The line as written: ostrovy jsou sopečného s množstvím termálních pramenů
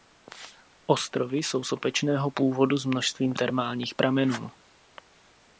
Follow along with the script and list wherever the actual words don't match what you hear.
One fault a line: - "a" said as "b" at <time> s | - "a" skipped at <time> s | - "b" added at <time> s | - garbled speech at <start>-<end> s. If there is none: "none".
- "původu" added at 2.3 s